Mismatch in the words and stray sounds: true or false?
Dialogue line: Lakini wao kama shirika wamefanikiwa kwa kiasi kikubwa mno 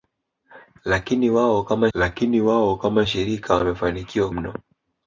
true